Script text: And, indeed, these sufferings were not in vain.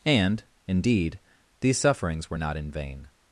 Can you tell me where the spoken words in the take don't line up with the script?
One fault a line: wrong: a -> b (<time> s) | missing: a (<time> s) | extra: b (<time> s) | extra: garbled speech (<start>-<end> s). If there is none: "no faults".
no faults